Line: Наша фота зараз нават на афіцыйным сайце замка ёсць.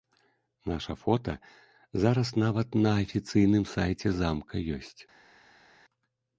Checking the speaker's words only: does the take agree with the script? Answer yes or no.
yes